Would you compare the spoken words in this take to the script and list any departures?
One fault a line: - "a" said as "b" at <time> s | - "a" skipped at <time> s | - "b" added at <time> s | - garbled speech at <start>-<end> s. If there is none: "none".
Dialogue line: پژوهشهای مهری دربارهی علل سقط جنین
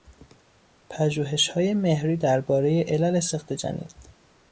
none